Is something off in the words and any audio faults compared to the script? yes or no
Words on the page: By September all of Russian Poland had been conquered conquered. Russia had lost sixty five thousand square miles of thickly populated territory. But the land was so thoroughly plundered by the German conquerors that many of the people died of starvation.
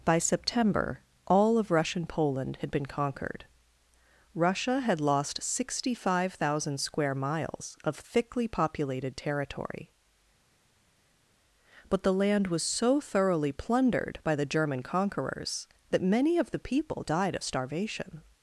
yes